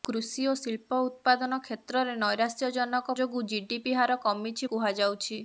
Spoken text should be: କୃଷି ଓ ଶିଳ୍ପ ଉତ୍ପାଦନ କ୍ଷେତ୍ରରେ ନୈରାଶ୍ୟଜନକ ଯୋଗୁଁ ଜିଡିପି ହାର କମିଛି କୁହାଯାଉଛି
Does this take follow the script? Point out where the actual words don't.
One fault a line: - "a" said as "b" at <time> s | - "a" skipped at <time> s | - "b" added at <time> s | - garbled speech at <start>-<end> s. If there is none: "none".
none